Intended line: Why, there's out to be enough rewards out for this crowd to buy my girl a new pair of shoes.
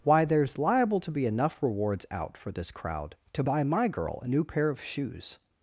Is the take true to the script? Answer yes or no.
no